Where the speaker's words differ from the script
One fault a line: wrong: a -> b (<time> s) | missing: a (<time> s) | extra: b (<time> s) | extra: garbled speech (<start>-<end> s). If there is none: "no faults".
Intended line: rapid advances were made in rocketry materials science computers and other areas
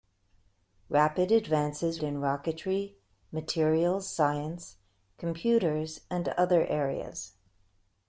missing: were made (2.0 s)